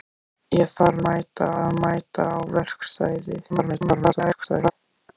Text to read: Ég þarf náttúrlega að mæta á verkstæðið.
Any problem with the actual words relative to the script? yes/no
yes